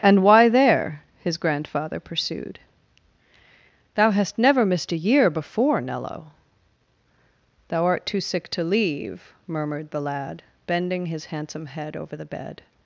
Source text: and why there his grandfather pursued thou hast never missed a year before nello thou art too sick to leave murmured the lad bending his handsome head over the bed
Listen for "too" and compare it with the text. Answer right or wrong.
right